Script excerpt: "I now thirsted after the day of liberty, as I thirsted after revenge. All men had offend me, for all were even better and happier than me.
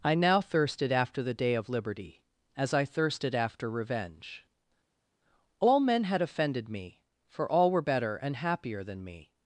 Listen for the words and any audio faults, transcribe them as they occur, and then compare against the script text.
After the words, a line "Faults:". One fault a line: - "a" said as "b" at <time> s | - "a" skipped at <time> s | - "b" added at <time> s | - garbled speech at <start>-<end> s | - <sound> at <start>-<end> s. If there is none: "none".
"I now thirsted after the day of liberty, as I thirsted after revenge. All men had offended me, for all were better and happier than me.
Faults:
- "offend" said as "offended" at 6.2 s
- "even" skipped at 7.8 s